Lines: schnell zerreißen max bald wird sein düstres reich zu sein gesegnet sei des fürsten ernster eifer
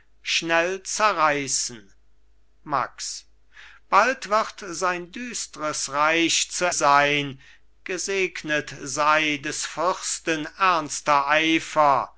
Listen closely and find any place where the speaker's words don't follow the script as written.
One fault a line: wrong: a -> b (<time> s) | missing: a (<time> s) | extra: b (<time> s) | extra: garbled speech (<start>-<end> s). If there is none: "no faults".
no faults